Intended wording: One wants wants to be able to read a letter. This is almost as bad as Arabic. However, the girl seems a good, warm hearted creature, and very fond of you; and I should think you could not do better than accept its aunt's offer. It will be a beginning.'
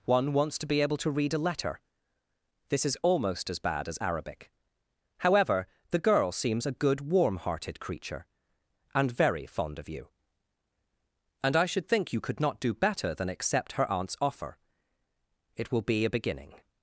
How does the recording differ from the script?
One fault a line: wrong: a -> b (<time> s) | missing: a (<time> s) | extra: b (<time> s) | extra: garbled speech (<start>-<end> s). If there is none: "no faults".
missing: wants (0.6 s)
wrong: its -> her (13.7 s)